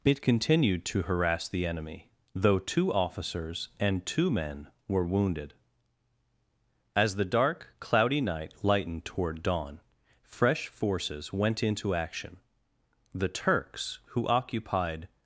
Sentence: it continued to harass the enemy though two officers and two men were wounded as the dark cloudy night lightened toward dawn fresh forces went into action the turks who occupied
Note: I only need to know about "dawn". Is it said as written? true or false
true